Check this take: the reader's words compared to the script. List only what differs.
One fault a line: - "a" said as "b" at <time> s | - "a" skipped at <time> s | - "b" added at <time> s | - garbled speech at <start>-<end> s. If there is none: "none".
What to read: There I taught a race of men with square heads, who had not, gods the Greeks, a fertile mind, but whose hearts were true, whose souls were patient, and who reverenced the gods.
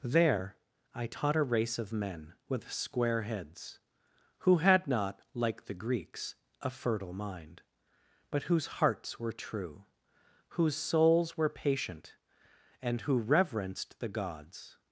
- "gods" said as "like" at 5.3 s